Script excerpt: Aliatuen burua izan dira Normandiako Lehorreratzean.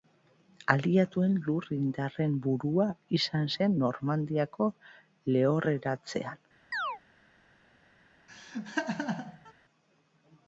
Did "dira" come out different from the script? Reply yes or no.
yes